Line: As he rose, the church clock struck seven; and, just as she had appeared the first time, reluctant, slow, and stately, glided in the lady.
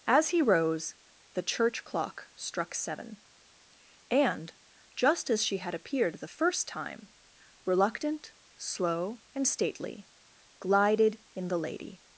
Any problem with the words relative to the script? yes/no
no